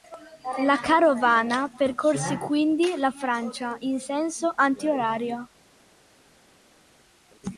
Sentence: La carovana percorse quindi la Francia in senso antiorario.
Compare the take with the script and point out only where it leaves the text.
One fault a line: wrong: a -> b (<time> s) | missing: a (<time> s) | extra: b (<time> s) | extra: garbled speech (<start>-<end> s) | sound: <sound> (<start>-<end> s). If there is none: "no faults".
no faults